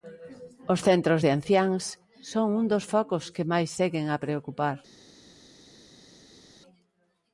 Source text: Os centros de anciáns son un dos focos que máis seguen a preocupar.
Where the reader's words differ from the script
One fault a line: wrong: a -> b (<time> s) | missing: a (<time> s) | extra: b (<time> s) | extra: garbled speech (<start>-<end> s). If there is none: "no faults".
no faults